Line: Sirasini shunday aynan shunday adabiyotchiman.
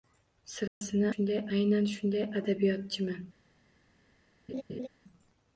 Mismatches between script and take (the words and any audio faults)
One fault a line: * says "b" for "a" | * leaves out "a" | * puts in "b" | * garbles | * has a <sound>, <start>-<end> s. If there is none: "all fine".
* has a dropout, 0.7-0.8 s
* has a laugh, 4.5-4.9 s